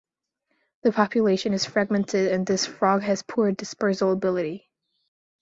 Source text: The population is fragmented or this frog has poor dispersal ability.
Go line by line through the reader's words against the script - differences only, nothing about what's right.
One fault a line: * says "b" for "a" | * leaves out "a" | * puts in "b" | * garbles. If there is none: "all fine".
* says "and" for "or"